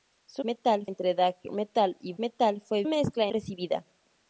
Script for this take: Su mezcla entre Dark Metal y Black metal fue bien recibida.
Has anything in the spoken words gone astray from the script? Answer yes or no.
yes